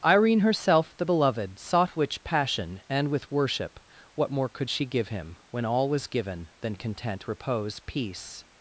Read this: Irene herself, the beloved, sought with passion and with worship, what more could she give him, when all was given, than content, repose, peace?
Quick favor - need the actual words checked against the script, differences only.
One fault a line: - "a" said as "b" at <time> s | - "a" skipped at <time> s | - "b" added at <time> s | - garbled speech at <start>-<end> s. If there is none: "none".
- "with" said as "which" at 2.0 s